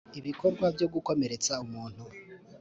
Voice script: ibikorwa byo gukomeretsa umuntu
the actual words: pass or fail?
pass